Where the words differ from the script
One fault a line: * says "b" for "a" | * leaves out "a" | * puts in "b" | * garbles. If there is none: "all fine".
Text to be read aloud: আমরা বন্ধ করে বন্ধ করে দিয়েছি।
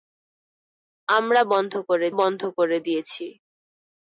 all fine